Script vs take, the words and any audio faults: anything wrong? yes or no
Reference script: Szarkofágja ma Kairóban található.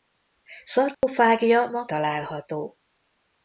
yes